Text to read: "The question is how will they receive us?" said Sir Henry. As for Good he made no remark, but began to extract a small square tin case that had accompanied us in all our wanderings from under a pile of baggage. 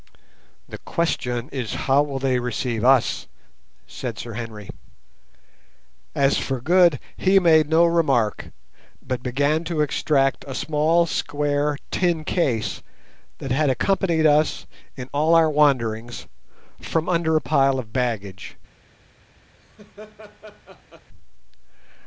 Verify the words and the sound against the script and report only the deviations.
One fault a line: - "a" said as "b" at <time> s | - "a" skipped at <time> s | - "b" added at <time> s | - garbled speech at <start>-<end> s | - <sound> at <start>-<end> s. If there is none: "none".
- laugh at 19.5-21.1 s